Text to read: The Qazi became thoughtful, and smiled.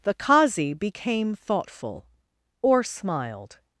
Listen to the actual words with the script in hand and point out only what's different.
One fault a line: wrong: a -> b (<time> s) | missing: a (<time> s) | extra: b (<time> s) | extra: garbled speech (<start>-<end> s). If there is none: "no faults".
wrong: and -> or (2.6 s)